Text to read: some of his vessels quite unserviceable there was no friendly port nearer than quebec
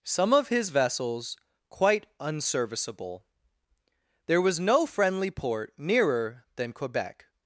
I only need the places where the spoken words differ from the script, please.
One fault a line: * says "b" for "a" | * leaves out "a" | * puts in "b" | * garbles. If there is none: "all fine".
all fine